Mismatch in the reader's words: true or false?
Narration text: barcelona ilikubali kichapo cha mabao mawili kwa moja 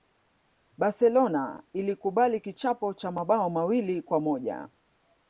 false